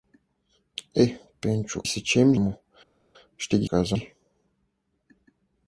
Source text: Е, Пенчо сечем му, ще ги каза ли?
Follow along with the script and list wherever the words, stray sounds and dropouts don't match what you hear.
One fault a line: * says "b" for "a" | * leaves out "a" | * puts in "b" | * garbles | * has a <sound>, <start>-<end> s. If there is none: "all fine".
all fine